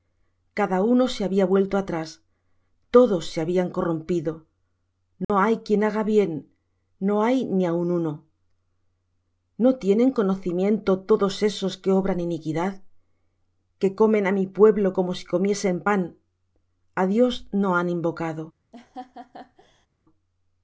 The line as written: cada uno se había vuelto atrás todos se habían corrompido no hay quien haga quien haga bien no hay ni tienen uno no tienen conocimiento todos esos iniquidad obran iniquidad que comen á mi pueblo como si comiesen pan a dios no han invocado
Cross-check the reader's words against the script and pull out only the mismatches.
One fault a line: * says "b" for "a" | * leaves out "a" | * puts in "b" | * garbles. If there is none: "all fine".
* leaves out "quien haga"
* says "aun" for "tienen"
* says "que" for "iniquidad"